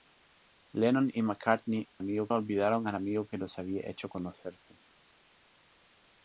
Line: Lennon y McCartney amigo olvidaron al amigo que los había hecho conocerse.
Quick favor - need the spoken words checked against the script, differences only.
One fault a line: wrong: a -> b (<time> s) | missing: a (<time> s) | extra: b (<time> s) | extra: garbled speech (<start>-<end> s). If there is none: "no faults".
no faults